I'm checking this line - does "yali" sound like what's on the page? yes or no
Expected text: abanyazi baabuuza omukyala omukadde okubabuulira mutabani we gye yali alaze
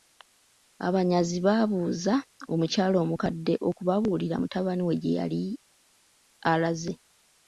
yes